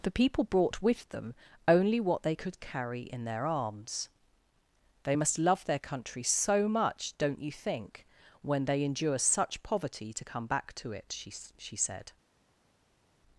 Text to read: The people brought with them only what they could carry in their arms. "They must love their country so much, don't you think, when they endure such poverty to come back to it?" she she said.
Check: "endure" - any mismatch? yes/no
no